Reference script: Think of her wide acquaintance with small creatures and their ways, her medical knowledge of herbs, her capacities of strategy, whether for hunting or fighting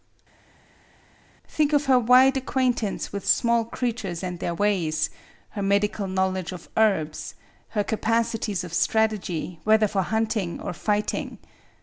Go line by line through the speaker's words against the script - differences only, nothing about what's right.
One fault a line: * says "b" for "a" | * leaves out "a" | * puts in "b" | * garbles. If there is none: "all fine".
all fine